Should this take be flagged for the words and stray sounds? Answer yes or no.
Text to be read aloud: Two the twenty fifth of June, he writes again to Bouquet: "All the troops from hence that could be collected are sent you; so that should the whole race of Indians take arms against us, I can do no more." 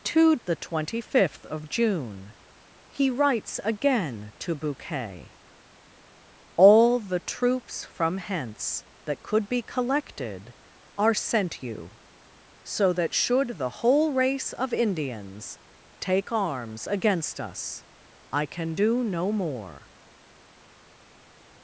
no